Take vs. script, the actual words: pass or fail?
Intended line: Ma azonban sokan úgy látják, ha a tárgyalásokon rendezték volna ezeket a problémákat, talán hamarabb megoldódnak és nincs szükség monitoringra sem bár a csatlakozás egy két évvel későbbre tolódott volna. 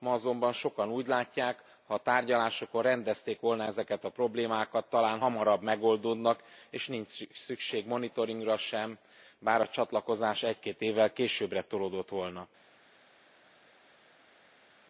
pass